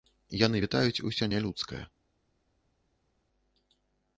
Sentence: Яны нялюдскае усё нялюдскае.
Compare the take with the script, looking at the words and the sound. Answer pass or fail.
fail